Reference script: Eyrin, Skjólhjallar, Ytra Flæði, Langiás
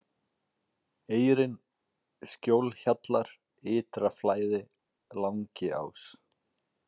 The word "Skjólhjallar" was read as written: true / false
true